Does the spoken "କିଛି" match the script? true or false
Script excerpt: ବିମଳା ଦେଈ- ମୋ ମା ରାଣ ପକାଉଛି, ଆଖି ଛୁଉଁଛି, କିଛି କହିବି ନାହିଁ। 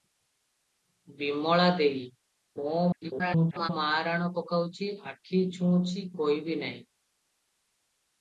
false